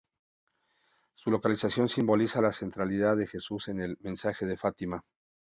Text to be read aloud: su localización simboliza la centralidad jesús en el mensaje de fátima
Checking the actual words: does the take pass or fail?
fail